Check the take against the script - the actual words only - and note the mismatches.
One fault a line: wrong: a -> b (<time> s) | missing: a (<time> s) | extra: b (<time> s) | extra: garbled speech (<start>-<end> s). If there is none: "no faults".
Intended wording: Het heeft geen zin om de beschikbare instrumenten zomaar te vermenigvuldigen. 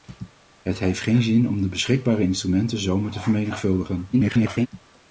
extra: garbled speech (4.1-4.7 s)